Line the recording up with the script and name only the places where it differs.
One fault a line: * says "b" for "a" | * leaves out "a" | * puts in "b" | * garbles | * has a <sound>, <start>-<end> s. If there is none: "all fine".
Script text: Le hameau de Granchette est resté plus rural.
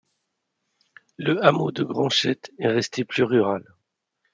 all fine